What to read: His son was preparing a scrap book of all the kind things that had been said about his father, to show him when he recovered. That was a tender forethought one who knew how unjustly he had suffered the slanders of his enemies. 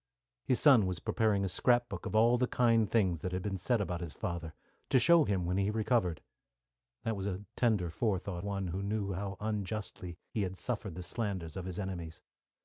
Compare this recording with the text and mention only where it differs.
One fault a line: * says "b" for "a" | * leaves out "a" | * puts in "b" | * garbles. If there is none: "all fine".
all fine